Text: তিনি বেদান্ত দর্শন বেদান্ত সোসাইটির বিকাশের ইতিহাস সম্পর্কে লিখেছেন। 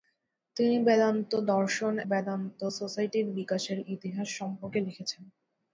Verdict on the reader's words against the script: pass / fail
pass